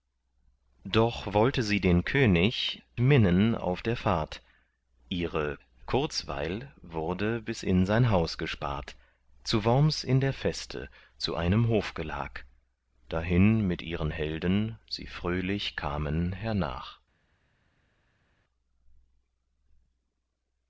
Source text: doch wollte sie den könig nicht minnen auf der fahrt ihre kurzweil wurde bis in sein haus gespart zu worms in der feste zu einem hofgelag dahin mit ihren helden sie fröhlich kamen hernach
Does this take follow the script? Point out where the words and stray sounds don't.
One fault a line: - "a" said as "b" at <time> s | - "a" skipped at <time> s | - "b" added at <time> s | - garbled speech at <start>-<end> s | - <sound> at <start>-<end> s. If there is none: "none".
- "nicht" skipped at 2.8 s